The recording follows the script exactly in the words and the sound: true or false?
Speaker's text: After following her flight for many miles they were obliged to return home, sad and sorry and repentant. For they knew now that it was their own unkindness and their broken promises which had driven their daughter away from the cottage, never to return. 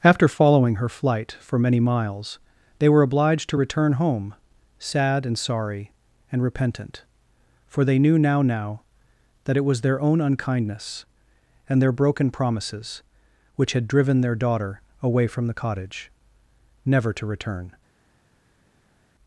false